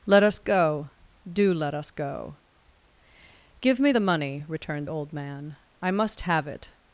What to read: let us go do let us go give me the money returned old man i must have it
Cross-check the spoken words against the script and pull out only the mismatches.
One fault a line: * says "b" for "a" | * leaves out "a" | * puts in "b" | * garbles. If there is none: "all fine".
all fine